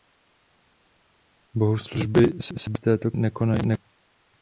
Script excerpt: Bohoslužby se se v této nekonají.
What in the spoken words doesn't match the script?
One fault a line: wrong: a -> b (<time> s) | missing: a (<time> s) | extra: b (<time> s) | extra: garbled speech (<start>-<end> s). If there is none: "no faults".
no faults